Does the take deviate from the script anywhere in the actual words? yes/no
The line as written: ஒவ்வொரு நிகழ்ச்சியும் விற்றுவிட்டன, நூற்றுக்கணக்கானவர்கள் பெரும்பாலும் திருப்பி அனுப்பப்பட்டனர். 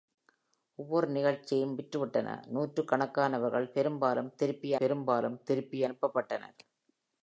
yes